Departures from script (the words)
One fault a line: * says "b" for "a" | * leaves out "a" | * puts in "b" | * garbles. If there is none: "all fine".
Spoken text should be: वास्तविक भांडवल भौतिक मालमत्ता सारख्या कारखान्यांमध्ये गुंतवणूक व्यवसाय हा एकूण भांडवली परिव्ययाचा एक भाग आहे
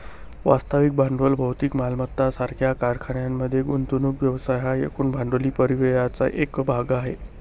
all fine